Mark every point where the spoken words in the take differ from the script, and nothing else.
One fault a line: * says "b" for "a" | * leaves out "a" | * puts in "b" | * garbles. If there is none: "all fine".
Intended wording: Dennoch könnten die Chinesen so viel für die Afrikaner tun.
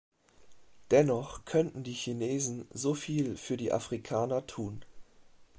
all fine